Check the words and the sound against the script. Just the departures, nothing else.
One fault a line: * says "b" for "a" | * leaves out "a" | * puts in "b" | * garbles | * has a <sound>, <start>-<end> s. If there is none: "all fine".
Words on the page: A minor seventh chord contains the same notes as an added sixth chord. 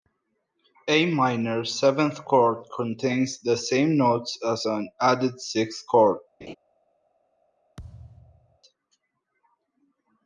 * has a laugh, 6.4-6.5 s
* has a thud, 7.8-8.6 s